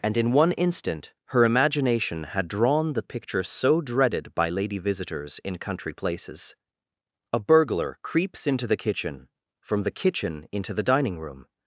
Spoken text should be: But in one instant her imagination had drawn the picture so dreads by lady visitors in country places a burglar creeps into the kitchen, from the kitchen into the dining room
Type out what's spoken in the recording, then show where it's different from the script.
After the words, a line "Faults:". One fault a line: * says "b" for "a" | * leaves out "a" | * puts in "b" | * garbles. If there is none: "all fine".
And in one instant her imagination had drawn the picture so dreaded by lady visitors in country places a burglar creeps into the kitchen, from the kitchen into the dining room
Faults:
* says "And" for "But"
* says "dreaded" for "dreads"